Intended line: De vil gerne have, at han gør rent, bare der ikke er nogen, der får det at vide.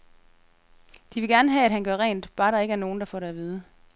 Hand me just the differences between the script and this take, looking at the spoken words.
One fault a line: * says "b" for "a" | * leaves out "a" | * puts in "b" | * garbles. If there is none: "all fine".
all fine